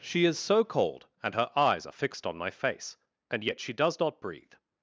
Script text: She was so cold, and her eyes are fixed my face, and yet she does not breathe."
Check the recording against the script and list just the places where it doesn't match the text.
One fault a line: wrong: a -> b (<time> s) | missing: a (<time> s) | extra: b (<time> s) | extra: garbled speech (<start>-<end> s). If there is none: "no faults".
wrong: was -> is (0.2 s)
extra: on (2.2 s)